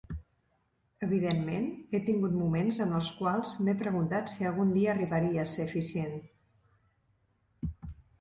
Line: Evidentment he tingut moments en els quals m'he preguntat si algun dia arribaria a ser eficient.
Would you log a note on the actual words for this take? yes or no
no